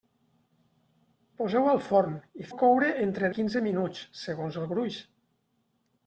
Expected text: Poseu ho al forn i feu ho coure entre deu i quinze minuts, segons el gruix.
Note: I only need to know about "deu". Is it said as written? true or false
false